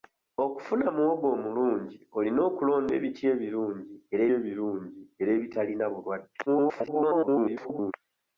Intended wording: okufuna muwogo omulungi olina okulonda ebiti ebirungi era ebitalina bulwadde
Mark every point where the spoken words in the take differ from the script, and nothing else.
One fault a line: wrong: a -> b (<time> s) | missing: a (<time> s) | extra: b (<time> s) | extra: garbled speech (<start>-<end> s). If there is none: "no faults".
extra: ebirungi era (4.4 s)
extra: garbled speech (6.5-7.9 s)